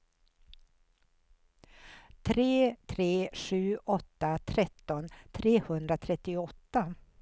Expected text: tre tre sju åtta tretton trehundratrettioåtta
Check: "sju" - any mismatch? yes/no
no